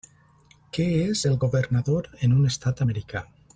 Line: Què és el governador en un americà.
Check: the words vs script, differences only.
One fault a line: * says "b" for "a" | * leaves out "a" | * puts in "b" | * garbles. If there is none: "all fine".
* puts in "estat"